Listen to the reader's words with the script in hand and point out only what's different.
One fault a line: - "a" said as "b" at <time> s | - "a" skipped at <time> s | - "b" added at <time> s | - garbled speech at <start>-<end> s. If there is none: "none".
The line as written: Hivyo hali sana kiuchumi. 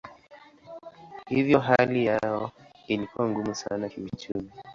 - "yao ilikuwa ngumu" added at 2.0 s